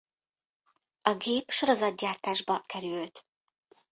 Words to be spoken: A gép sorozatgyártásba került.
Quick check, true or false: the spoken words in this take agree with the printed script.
true